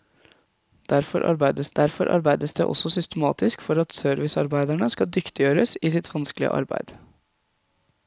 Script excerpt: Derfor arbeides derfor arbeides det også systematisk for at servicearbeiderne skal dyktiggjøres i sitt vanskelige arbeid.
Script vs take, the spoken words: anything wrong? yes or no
no